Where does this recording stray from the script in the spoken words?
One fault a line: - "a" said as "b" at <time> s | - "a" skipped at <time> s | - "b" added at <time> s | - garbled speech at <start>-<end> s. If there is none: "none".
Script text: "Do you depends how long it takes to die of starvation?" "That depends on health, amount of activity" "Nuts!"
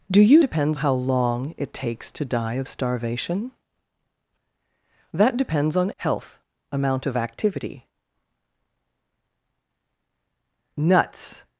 none